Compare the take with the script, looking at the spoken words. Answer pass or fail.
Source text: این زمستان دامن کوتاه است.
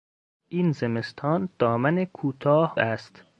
pass